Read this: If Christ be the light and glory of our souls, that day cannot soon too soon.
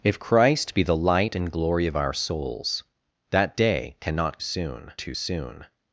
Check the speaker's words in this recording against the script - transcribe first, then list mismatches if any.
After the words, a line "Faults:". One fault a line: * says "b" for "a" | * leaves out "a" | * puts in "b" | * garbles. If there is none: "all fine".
If Christ be the light and glory of our souls, that day cannot soon too soon.
Faults:
all fine